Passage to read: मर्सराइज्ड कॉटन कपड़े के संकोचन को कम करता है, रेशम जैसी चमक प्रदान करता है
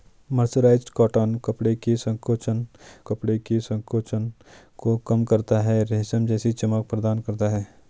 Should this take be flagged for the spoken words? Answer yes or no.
yes